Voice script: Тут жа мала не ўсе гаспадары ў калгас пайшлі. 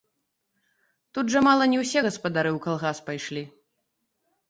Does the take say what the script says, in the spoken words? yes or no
yes